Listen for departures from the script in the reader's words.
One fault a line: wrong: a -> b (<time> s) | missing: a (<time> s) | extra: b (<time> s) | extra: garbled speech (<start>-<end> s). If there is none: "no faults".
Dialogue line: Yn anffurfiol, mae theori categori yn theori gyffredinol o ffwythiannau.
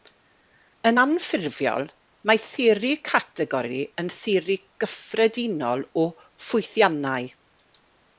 no faults